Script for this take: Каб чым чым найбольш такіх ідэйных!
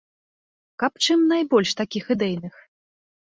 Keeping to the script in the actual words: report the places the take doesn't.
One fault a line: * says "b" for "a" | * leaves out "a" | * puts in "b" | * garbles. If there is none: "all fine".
* leaves out "чым"